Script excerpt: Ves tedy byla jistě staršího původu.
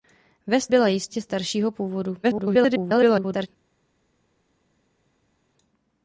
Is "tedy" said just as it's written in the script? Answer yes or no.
no